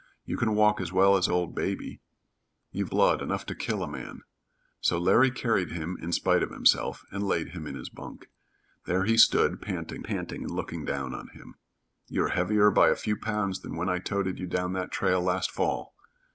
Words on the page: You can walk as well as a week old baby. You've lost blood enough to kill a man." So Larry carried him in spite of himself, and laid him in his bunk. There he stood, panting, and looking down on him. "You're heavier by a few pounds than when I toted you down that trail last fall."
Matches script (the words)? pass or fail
fail